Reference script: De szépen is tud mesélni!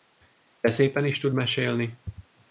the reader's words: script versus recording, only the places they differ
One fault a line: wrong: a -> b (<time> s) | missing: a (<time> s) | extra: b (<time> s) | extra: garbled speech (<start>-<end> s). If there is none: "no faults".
no faults